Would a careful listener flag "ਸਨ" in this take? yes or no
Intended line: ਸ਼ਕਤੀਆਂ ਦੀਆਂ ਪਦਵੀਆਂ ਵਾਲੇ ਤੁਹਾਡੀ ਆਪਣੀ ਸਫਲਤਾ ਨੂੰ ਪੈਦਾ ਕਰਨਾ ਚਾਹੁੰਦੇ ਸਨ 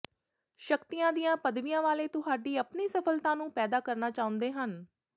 yes